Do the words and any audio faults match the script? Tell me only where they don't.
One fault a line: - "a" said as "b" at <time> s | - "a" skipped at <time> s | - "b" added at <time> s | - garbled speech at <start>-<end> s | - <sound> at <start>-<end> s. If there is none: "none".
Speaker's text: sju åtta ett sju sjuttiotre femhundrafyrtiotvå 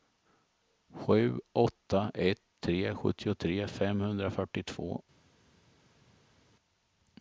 - "sju" said as "tre" at 2.6 s